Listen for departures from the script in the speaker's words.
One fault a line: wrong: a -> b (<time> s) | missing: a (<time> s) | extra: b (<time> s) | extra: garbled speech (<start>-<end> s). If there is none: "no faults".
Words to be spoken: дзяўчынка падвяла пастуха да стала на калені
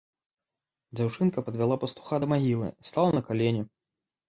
extra: магілы (2.4 s)